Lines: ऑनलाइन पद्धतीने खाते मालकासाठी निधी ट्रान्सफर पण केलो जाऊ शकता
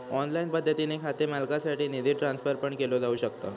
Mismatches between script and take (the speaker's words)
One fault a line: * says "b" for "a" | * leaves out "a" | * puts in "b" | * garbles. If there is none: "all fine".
all fine